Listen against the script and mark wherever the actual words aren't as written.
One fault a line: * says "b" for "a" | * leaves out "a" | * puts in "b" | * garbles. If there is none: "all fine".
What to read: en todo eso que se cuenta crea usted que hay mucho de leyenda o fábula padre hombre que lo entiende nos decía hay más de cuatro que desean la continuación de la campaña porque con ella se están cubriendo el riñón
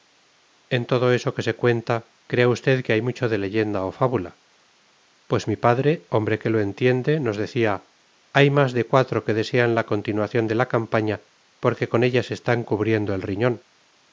* puts in "pues mi"